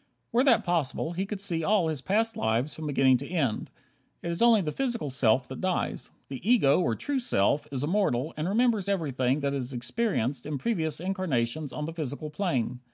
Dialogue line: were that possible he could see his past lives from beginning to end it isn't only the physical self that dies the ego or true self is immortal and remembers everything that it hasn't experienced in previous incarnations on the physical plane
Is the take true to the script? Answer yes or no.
no